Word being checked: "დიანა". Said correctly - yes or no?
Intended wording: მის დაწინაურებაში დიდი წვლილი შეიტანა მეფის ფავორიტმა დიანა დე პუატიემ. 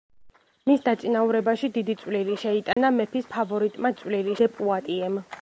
no